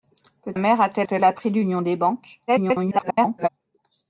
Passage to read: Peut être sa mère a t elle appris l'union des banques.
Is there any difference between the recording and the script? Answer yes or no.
yes